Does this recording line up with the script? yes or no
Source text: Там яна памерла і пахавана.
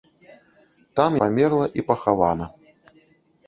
no